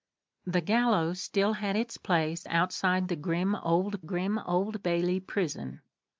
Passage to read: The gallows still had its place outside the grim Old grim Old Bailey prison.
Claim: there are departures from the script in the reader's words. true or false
false